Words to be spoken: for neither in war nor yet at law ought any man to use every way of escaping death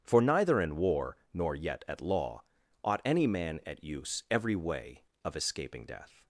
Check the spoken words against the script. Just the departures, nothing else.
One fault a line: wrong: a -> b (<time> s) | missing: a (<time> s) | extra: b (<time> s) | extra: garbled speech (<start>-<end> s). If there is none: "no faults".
wrong: to -> at (3.6 s)